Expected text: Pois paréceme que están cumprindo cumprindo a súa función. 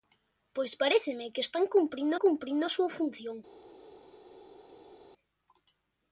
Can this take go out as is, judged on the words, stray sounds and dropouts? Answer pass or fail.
pass